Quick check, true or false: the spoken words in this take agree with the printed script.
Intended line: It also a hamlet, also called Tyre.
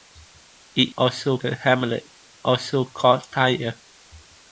true